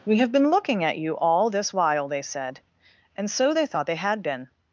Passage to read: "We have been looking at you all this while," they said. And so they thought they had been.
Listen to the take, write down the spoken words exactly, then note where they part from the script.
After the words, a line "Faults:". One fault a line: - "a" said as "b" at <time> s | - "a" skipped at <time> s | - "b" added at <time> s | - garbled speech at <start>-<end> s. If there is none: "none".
"We have been looking at you all this while," they said. And so they thought they had been.
Faults:
none